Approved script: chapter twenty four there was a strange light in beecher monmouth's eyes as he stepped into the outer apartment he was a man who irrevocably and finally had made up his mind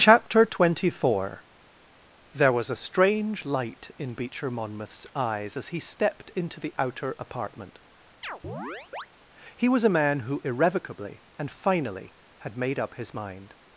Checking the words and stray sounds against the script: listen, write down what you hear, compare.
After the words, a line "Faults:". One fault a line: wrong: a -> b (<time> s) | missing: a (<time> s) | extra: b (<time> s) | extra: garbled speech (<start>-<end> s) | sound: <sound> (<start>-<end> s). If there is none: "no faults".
chapter twenty four there was a strange light in beecher monmouth's eyes as he stepped into the outer apartment he was a man who irrevocably and finally had made up his mind
Faults:
sound: chirp (8.2-9.1 s)